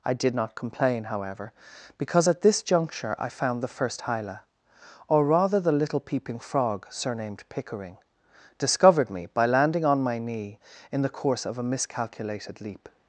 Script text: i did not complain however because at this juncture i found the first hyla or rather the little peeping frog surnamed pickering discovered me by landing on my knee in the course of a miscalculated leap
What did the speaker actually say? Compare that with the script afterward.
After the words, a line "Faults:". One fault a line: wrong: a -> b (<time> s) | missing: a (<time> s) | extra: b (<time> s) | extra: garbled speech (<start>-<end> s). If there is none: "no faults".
i did not complain however because at this juncture i found the first hyla or rather the little peeping frog surnamed pickering discovered me by landing on my knee in the course of a miscalculated leap
Faults:
no faults